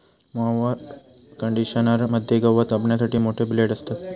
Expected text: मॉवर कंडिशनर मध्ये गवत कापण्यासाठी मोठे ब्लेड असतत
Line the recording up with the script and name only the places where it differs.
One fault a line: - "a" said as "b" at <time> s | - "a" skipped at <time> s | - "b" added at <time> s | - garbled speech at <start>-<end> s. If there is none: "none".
none